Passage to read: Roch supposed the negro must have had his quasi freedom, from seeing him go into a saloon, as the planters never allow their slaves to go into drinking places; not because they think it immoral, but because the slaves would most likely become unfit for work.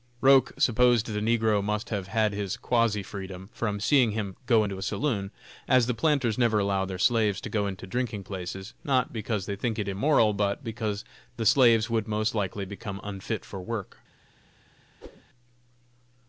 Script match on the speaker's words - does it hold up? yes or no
yes